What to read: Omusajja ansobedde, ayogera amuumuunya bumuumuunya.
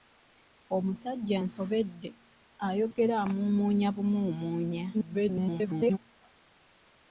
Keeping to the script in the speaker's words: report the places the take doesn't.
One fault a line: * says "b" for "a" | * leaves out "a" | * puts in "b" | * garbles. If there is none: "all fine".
* garbles